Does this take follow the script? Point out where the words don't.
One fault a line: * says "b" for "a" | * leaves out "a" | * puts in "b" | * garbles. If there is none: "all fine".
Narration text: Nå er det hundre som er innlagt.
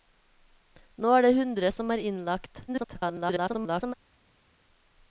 * garbles